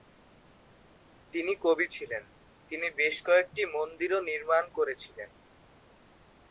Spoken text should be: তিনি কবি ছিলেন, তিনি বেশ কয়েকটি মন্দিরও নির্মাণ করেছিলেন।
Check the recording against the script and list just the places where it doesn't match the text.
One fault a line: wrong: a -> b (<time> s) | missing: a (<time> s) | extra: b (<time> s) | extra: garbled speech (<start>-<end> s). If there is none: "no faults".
no faults